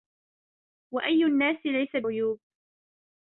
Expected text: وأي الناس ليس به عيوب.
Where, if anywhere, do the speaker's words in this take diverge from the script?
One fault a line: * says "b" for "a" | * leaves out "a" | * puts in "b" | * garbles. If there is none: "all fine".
* leaves out "به"